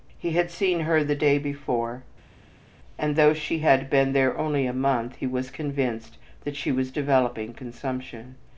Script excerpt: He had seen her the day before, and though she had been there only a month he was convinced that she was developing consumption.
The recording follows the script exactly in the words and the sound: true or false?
true